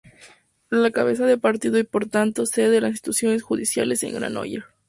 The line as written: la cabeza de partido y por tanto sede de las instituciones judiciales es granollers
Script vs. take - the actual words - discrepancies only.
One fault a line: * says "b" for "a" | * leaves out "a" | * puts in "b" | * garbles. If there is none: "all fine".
all fine